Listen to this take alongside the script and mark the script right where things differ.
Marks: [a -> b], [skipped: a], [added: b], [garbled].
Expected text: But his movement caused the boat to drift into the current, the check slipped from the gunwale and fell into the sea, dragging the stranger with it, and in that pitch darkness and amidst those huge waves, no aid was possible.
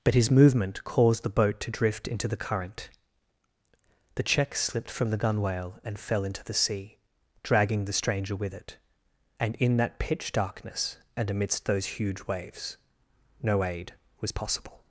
But his movement caused the boat to drift into the current, the check slipped from the gunwale and fell into the sea, dragging the stranger with it, and in that pitch darkness and amidst those huge waves, no aid was possible.